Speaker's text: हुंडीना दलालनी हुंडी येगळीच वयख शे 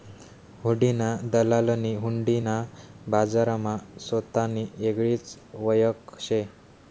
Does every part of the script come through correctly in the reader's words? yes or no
no